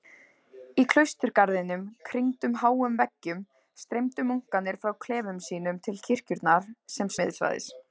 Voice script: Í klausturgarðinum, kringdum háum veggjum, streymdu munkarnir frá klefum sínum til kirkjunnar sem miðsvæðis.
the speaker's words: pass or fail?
pass